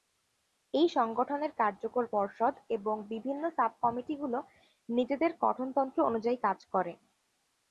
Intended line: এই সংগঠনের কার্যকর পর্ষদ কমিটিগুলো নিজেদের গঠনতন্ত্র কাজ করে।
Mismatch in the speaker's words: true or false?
true